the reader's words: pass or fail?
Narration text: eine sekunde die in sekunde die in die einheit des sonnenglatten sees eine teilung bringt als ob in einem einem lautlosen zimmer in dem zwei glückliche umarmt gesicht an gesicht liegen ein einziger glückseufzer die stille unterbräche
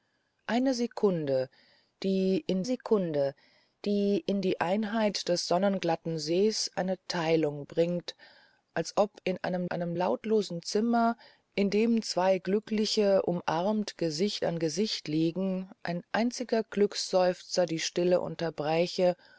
pass